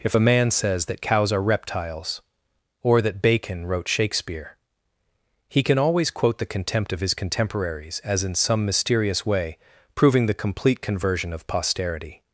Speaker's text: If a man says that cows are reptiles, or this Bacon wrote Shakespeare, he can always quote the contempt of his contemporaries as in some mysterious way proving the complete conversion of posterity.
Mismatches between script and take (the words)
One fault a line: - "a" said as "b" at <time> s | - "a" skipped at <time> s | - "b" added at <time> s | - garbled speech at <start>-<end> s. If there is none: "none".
- "this" said as "that" at 3.0 s